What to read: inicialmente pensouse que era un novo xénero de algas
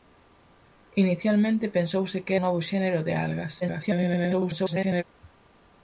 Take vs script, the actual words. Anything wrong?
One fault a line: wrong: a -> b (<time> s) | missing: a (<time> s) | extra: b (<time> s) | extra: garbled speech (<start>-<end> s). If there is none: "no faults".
missing: era (2.3 s)
extra: garbled speech (3.6-5.0 s)